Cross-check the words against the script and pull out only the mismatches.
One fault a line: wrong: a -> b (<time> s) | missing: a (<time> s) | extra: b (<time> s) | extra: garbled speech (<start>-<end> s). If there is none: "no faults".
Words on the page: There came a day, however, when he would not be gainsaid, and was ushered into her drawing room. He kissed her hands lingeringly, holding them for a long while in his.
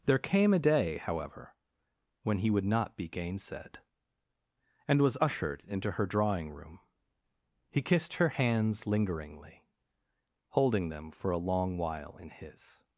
no faults